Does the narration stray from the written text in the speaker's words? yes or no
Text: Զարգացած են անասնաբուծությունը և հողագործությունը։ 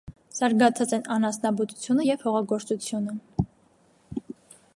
no